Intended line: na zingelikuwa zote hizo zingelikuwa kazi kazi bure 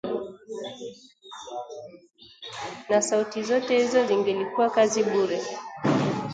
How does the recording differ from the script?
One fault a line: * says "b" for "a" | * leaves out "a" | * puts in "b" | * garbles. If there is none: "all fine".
* says "sauti" for "zingelikuwa"
* leaves out "kazi"